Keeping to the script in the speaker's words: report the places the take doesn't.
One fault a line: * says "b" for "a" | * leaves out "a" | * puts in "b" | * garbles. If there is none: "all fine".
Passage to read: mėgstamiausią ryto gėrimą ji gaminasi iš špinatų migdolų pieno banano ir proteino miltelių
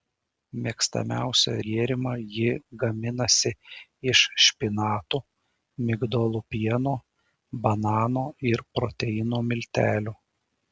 * leaves out "ryto"